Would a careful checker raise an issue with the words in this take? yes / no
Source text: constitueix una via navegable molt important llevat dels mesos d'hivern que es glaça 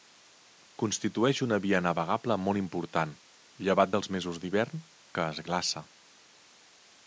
no